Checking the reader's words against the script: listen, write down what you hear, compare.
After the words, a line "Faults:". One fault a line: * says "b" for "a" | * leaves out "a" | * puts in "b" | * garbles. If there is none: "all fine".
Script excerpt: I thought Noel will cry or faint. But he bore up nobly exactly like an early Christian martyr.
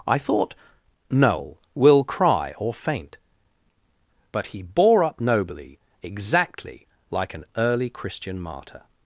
I thought Noel will cry or faint. But he bore up nobly exactly like an early Christian martyr.
Faults:
all fine